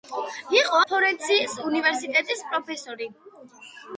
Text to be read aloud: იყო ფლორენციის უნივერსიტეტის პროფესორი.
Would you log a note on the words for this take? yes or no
no